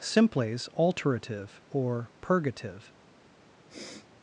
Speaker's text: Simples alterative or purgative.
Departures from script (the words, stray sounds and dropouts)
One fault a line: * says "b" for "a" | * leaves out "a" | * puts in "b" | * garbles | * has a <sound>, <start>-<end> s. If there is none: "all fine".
* has a sniff, 3.7-4.1 s